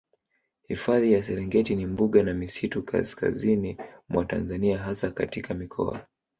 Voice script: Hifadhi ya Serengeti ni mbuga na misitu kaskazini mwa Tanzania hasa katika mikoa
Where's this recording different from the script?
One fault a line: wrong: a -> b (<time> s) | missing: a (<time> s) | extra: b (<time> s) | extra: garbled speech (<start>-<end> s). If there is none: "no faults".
no faults